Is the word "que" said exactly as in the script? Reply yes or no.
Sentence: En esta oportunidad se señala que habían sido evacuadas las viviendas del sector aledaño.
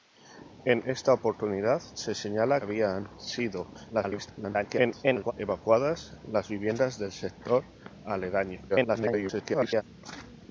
no